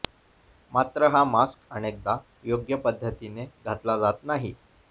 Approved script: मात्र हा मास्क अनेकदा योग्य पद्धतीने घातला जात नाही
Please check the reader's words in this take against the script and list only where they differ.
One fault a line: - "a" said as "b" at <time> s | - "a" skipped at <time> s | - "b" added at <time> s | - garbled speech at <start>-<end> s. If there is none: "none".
none